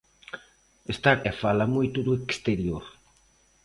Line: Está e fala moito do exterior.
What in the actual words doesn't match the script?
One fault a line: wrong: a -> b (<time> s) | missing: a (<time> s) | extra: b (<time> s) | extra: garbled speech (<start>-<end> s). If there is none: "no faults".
no faults